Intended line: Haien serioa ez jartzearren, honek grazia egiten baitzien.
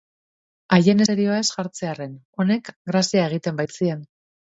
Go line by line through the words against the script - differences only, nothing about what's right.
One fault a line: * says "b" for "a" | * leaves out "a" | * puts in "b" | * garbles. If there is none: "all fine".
all fine